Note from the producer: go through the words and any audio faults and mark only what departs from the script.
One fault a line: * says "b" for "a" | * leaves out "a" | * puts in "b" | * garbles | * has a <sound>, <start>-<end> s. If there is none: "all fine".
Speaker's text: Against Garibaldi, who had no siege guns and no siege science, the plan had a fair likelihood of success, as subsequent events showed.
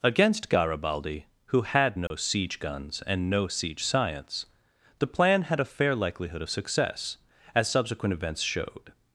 * has a dropout, 2.1-2.1 s